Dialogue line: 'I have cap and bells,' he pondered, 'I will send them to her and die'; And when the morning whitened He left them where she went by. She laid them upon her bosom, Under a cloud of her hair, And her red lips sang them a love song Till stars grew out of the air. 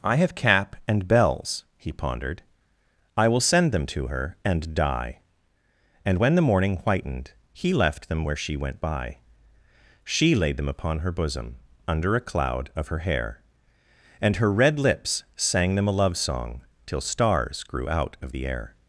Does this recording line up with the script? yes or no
yes